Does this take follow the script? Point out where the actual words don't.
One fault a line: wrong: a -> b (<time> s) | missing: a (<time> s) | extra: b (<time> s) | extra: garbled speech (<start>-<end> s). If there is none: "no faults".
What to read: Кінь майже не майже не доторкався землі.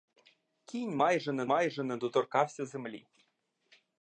no faults